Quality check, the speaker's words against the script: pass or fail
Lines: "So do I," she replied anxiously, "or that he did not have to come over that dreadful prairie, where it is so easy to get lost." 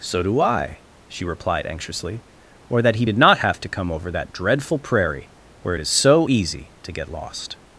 pass